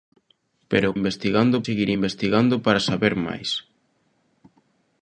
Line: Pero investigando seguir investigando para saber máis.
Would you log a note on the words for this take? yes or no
no